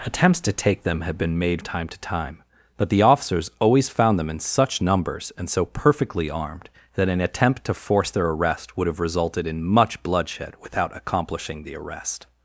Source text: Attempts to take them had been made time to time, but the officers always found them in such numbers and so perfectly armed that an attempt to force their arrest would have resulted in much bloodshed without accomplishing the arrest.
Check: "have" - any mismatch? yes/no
no